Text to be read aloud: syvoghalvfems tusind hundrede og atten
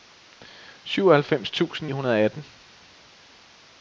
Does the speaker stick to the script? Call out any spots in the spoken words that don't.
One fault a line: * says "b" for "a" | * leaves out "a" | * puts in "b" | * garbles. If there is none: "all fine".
all fine